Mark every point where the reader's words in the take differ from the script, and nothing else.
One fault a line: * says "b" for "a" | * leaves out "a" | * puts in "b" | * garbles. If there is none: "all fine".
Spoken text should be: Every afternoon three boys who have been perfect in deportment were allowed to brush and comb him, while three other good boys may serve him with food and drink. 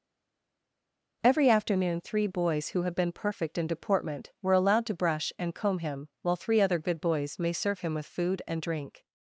all fine